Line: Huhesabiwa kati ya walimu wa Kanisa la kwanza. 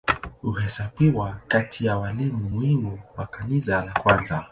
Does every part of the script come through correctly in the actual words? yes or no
no